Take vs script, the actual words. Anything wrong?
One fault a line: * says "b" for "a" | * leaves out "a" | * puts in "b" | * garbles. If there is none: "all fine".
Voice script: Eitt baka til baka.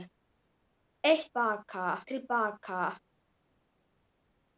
all fine